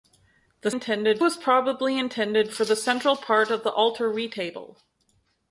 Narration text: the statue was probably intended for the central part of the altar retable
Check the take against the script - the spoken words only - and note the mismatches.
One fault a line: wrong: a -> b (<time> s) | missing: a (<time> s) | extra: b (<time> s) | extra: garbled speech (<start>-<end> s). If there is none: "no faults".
wrong: statue -> intended (0.7 s)